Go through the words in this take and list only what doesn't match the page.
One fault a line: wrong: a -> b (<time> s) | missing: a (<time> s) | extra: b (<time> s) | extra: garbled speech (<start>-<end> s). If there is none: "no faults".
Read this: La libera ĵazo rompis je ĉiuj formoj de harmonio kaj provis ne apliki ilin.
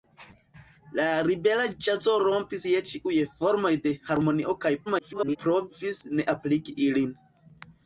extra: garbled speech (4.9-5.4 s)